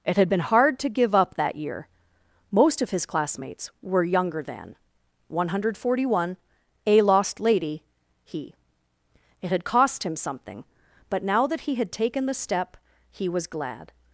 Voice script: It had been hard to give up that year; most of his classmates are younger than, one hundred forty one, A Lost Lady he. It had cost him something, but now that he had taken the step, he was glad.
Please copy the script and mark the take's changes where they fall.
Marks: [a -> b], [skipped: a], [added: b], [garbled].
It had been hard to give up that year; most of his classmates [are -> were] younger than, one hundred forty one, A Lost Lady he. It had cost him something, but now that he had taken the step, he was glad.